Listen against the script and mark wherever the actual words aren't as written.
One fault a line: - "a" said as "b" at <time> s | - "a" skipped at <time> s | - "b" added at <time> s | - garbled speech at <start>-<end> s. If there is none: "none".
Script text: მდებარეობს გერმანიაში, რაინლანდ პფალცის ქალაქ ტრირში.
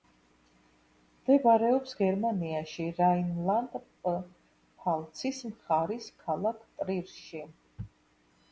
- "მხარის" added at 5.5 s